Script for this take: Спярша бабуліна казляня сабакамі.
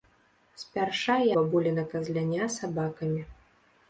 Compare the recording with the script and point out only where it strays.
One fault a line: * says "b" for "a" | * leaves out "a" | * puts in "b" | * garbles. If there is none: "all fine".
all fine